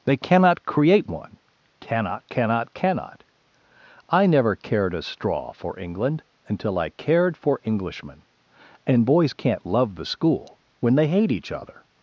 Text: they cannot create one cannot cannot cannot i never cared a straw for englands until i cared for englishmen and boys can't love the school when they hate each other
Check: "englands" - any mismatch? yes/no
yes